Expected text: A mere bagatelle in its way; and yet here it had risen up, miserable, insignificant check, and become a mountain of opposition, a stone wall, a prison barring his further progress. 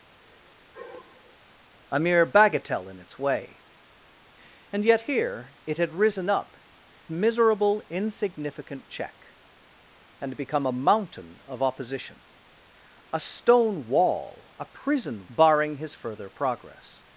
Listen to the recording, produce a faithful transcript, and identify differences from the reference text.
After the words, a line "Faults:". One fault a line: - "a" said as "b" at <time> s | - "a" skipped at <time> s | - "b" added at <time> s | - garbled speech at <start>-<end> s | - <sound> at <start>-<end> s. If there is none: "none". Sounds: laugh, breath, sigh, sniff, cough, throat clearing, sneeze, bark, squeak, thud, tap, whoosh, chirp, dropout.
A mere bagatelle in its way; and yet here it had risen up, miserable, insignificant check, and become a mountain of opposition, a stone wall, a prison barring his further progress.
Faults:
- sigh at 0.2-1.4 s